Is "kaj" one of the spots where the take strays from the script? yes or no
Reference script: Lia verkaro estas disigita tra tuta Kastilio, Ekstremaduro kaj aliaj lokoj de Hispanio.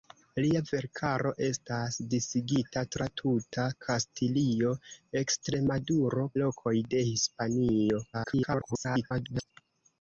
yes